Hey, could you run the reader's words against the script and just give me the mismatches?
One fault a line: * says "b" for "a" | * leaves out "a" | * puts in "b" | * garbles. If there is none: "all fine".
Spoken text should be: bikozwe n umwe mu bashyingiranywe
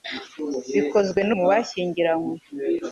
* leaves out "umwe"